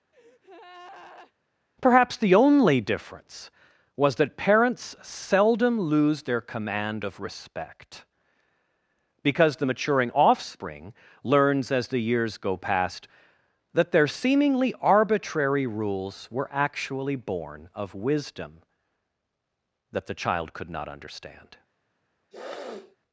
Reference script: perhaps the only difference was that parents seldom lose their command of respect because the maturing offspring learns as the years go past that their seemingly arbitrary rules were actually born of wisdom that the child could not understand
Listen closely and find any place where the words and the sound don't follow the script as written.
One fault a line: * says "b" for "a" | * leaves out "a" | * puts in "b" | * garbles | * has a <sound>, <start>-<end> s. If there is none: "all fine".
* has a breath, 0.1-1.3 s
* has a sniff, 22.3-23.0 s